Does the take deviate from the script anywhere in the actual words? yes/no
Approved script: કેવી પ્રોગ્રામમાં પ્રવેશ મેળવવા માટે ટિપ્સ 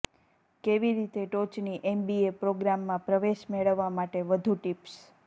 yes